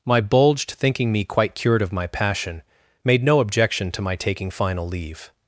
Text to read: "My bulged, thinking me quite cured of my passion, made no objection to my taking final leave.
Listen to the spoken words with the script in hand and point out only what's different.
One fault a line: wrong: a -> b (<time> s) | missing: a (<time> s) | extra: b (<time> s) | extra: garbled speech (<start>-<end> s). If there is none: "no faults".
no faults